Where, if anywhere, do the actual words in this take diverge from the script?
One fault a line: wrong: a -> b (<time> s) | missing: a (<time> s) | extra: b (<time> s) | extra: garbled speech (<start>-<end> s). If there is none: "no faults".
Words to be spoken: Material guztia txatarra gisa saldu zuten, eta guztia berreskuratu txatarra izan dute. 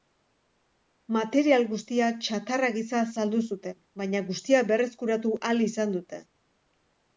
wrong: eta -> baina (4.0 s)
wrong: txatarra -> ahal (5.4 s)